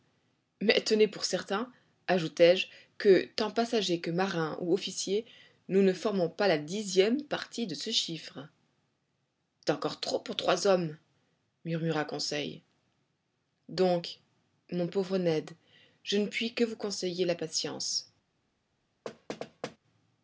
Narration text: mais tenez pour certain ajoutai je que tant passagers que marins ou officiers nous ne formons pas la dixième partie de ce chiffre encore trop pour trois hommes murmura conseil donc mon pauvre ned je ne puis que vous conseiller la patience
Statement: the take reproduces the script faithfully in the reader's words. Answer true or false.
true